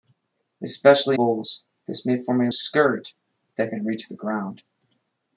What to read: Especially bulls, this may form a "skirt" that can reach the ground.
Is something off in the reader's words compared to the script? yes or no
no